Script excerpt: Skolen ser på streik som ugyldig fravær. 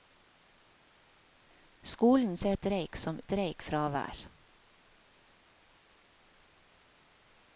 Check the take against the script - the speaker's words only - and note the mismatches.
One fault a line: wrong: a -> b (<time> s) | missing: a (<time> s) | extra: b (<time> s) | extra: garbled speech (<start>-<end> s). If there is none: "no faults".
missing: på (2.6 s)
wrong: ugyldig -> streik (3.2 s)